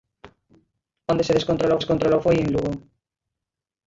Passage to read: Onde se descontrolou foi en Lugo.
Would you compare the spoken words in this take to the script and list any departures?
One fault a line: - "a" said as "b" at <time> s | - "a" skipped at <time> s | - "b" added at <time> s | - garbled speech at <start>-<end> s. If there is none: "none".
- "descontrolou" added at 1.8 s